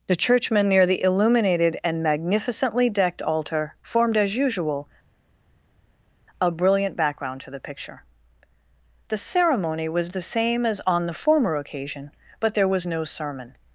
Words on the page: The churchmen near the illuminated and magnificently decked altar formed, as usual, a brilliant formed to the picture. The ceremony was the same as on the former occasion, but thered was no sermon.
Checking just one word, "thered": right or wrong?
wrong